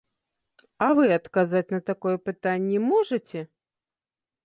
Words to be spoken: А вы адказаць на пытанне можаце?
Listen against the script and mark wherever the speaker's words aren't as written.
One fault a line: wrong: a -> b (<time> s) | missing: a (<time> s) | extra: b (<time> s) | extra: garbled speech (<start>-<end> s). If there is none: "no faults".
extra: такое (1.9 s)